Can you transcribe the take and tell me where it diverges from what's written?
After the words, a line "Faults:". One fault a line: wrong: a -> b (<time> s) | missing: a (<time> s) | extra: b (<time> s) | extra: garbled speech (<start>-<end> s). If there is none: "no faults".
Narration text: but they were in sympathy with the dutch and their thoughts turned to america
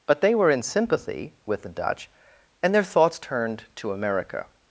but they were in sympathy with the dutch and their thoughts turned to america
Faults:
no faults